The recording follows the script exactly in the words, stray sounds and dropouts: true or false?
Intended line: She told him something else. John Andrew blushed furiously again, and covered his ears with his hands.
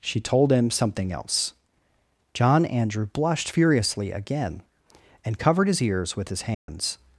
false